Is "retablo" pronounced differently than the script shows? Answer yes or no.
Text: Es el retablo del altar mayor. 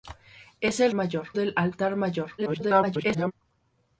yes